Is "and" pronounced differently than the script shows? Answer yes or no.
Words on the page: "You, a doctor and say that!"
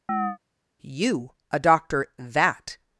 yes